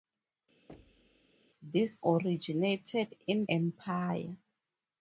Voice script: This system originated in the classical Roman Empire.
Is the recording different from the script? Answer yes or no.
yes